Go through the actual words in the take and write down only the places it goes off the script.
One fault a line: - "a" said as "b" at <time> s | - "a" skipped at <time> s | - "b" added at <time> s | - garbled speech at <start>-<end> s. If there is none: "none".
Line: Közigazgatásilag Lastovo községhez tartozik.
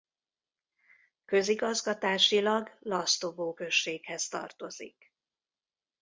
none